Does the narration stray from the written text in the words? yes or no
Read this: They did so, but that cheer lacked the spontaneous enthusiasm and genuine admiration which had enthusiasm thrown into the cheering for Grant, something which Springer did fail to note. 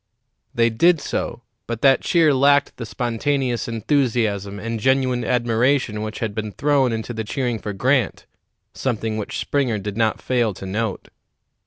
yes